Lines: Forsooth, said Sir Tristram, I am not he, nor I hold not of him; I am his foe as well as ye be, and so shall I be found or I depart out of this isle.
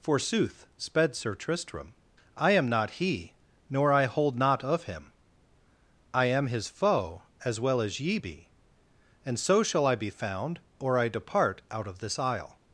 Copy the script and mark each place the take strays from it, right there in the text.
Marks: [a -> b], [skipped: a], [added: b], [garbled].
Forsooth, [said -> sped] Sir Tristram, I am not he, nor I hold not of him; I am his foe as well as ye be, and so shall I be found or I depart out of this isle.